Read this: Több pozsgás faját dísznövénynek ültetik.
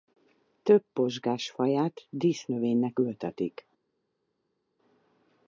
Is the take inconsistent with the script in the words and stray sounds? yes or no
no